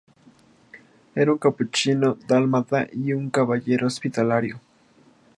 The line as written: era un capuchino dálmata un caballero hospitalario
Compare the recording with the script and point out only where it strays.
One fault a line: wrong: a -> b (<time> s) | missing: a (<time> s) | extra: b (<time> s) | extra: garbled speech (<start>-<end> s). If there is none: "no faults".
extra: y (2.9 s)